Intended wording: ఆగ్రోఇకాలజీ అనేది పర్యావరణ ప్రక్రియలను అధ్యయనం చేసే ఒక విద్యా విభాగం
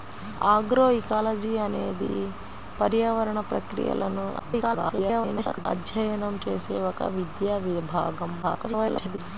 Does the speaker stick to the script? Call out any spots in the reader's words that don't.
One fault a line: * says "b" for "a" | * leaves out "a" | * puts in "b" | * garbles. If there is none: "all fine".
* garbles
* garbles